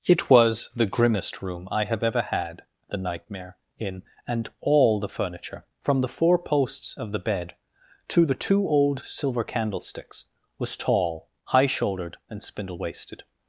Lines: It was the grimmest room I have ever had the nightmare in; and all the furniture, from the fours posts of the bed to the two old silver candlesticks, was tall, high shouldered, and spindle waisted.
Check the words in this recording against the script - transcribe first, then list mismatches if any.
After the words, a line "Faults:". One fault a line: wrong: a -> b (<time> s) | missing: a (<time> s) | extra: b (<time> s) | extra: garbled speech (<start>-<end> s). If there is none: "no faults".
It was the grimmest room I have ever had the nightmare in; and all the furniture, from the four posts of the bed to the two old silver candlesticks, was tall, high shouldered, and spindle waisted.
Faults:
wrong: fours -> four (6.1 s)